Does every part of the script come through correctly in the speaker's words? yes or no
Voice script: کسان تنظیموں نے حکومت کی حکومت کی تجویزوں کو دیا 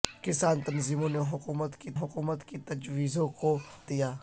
yes